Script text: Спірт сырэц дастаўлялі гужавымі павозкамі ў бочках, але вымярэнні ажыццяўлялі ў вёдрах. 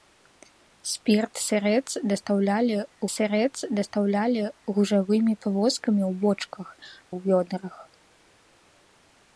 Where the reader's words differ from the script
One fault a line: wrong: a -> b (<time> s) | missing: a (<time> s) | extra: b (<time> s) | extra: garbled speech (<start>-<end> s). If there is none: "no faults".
extra: сырэц дастаўлялі (3.2 s)
missing: але вымярэнні ажыццяўлялі (6.7 s)